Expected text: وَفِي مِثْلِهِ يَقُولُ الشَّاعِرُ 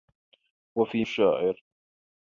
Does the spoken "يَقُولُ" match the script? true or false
false